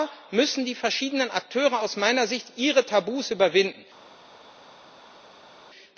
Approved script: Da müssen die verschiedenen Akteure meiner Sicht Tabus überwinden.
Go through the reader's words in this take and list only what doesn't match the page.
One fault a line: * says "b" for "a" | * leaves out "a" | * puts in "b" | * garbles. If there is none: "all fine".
* puts in "aus"
* puts in "ihre"